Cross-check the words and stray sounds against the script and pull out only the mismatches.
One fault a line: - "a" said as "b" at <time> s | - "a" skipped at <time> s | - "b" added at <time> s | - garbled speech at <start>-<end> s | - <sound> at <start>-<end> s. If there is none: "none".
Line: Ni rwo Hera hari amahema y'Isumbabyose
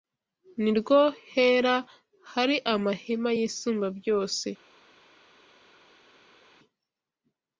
none